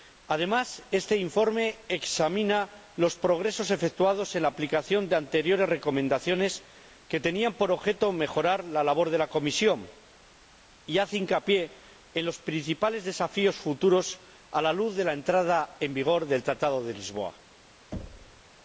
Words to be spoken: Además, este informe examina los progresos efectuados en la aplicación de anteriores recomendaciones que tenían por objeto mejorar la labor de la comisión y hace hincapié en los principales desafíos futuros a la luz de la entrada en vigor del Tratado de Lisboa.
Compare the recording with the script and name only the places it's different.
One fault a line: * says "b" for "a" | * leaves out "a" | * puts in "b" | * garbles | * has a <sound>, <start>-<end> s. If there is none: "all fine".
* has a thud, 17.9-18.4 s